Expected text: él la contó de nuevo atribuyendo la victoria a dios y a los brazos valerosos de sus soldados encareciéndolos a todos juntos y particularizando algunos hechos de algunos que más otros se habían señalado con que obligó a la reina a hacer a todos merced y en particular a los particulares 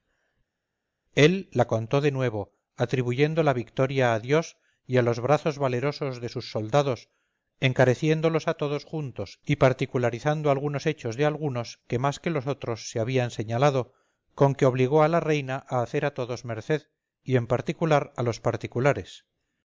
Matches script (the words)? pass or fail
fail